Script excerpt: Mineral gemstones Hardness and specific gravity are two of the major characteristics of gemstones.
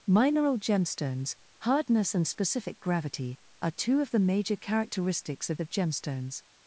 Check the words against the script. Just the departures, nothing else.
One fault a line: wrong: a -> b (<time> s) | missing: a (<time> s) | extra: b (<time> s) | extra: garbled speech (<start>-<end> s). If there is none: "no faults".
extra: of (5.6 s)